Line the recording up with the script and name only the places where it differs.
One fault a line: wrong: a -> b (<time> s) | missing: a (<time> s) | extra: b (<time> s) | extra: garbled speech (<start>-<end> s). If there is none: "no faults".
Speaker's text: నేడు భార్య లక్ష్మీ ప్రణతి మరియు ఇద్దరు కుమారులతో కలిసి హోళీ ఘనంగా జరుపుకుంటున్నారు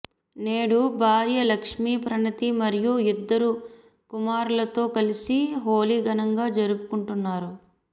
no faults